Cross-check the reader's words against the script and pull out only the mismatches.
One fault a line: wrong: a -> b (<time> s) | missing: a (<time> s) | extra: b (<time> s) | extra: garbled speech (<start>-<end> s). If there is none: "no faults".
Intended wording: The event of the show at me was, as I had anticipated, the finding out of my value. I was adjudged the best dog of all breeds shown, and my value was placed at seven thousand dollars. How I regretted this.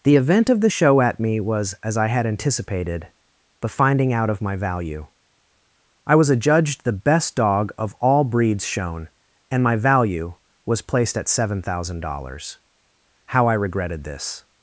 no faults